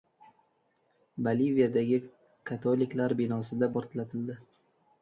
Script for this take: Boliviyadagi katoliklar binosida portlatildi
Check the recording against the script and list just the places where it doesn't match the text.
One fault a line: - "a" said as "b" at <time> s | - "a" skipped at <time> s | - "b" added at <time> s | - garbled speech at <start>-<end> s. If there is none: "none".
none